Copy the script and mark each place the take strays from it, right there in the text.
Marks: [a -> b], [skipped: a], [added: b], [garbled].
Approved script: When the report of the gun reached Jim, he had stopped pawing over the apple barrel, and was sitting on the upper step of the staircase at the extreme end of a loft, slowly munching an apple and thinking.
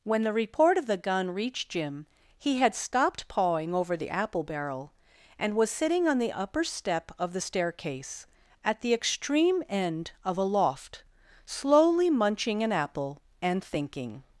When the report of the gun reached Jim, he had stopped pawing over the apple barrel, and was sitting on the upper step of the staircase at the extreme end of a loft, slowly munching an apple and thinking.